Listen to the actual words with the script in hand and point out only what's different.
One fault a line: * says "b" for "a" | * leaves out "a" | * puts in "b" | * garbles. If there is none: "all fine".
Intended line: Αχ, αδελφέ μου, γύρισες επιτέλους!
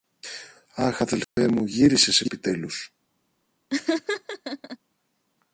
all fine